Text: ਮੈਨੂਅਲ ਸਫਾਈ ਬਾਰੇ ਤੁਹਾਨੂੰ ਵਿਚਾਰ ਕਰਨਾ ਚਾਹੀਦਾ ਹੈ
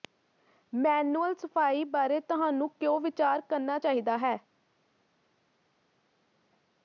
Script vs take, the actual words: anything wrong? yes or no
yes